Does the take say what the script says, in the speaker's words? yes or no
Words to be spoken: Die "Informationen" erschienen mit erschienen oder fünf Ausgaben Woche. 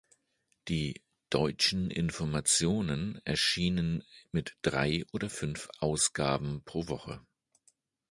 no